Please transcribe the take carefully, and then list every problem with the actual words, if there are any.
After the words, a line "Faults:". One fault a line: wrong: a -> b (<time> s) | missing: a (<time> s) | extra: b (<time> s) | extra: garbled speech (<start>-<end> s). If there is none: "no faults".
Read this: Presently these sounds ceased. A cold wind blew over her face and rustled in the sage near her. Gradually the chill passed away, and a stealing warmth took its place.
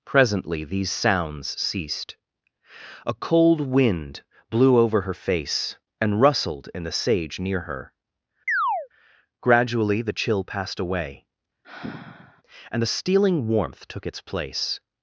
Presently these sounds ceased. A cold wind blew over her face and rustled in the sage near her. Gradually the chill passed away, and the stealing warmth took its place.
Faults:
wrong: a -> the (12.8 s)